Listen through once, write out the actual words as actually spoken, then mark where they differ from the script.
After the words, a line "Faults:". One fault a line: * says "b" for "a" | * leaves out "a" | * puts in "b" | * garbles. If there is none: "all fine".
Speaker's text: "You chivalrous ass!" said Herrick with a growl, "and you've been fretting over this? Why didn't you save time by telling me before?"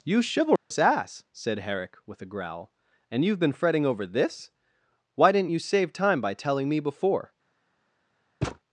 "You chivalrous ass!" said Herrick with a growl, "and you've been fretting over this? Why didn't you save time by telling me before?"
Faults:
all fine